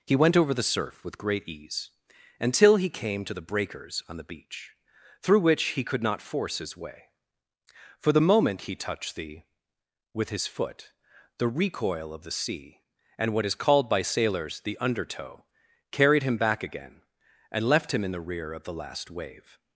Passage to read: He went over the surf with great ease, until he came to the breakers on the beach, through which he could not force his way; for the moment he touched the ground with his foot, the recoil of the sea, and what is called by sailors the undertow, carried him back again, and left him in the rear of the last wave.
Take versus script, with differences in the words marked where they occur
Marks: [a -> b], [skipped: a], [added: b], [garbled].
He went over the surf with great ease, until he came to the breakers on the beach, through which he could not force his way; for the moment he touched the [skipped: ground] with his foot, the recoil of the sea, and what is called by sailors the undertow, carried him back again, and left him in the rear of the last wave.